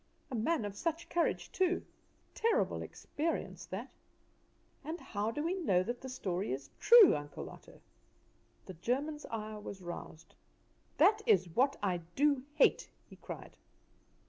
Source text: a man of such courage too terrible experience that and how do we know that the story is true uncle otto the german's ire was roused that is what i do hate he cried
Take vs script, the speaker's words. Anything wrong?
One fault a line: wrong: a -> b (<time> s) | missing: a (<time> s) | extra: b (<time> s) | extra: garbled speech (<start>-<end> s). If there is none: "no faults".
no faults